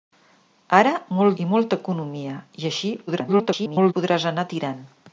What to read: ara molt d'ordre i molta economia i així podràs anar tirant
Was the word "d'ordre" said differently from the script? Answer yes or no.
yes